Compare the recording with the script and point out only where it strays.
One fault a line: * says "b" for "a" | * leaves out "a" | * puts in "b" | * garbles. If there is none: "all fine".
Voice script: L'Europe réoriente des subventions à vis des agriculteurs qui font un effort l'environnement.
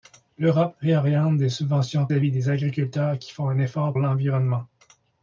all fine